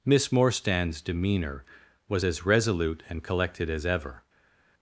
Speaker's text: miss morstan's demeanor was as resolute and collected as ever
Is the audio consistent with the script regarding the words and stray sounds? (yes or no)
yes